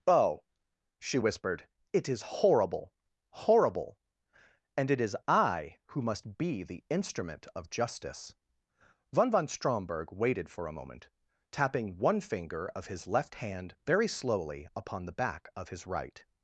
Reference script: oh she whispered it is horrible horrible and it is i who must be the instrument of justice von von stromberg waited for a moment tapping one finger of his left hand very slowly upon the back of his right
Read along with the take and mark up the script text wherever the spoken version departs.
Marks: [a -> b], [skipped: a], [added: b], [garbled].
oh she whispered it is horrible horrible and it is i who must be the instrument of justice von von stromberg waited for a moment tapping one finger of his left hand very slowly upon the back of his right